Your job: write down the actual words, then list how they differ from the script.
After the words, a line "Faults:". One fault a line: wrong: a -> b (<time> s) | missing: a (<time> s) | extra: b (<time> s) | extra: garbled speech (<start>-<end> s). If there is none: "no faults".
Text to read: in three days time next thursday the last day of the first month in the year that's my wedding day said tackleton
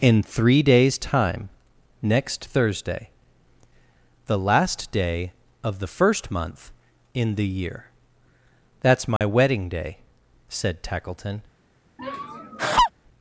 in three days time next thursday the last day of the first month in the year that's my wedding day said tackleton
Faults:
no faults